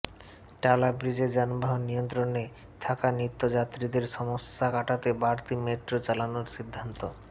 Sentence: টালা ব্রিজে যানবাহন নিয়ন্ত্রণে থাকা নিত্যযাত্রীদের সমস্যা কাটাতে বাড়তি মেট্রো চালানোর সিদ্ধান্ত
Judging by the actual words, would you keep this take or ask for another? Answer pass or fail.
pass